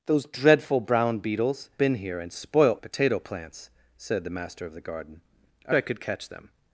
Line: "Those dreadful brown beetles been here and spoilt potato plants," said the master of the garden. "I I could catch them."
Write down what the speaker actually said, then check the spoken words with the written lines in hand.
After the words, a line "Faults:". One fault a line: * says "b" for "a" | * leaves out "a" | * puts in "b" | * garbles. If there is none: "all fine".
"Those dreadful brown beetles been here and spoilt potato plants," said the master of the garden. "I I could catch them."
Faults:
all fine